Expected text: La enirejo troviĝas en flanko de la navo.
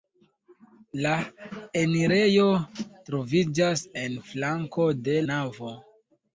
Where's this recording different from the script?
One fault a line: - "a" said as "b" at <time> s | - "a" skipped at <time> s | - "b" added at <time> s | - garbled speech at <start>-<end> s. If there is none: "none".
- "la" skipped at 5.2 s